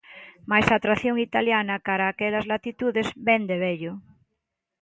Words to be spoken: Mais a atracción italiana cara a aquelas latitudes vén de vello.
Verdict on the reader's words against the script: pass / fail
pass